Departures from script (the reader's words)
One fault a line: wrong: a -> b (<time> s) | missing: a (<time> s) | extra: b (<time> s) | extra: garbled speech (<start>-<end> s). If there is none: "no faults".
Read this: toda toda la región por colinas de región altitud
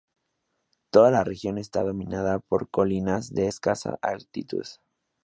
missing: toda (1.1 s)
extra: está dominada (1.6 s)
wrong: región -> escasa (3.4 s)